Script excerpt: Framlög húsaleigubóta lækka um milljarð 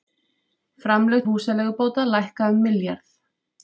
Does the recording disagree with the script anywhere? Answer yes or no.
no